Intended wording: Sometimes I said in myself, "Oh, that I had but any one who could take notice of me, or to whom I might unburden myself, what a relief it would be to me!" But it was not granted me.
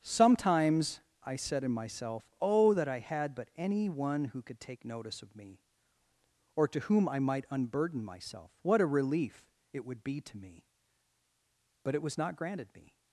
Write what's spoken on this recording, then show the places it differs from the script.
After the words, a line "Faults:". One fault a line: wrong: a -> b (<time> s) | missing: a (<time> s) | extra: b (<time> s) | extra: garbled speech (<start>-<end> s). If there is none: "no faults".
Sometimes I said in myself, "Oh, that I had but any one who could take notice of me, or to whom I might unburden myself, what a relief it would be to me!" But it was not granted me.
Faults:
no faults